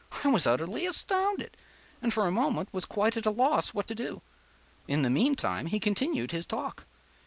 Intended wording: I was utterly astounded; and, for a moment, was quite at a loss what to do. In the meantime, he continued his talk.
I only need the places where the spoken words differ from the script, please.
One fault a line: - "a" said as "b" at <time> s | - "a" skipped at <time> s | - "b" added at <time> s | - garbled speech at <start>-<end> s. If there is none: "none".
none